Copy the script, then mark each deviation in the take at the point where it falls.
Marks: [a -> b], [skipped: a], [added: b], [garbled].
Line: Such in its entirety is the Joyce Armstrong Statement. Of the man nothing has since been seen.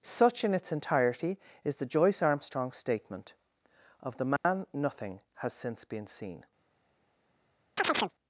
Such in its entirety is the Joyce Armstrong Statement. Of the man nothing has since been seen.